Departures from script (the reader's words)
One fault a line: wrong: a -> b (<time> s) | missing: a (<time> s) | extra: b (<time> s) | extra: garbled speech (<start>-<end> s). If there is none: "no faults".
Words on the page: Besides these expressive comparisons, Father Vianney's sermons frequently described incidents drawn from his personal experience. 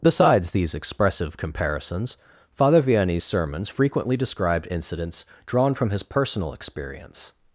no faults